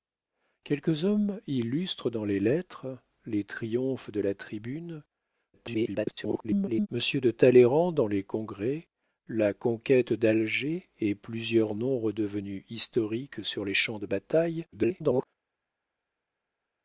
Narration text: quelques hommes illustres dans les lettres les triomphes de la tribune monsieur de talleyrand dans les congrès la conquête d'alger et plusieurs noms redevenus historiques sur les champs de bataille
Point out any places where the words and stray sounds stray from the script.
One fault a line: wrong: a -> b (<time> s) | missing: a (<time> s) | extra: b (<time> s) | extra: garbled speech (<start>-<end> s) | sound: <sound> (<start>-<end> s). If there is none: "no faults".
extra: garbled speech (5.5-6.9 s)
extra: garbled speech (14.7-15.3 s)